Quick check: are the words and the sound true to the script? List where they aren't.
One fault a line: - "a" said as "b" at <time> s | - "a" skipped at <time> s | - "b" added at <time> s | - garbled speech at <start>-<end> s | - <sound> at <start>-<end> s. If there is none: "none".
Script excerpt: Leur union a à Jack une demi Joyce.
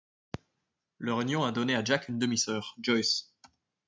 - "donné" added at 1.5 s
- "sœur" added at 2.4 s